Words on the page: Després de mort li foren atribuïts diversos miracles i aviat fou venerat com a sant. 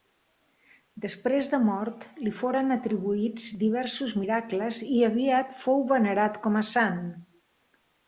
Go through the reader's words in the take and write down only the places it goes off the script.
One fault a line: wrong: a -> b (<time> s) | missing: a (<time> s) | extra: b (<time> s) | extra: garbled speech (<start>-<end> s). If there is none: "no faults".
no faults